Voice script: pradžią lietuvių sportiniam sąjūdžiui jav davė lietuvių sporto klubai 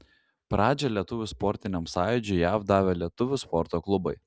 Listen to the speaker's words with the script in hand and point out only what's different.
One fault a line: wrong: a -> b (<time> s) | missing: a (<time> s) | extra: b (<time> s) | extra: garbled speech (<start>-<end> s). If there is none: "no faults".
no faults